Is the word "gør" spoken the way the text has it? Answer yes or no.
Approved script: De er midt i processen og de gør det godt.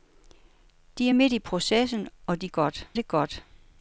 no